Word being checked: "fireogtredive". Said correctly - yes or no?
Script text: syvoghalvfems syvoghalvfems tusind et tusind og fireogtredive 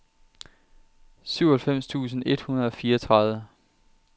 yes